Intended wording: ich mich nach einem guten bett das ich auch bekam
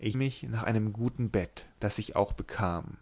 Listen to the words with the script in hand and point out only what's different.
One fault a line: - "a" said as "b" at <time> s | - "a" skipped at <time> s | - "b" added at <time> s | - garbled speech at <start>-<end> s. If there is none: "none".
none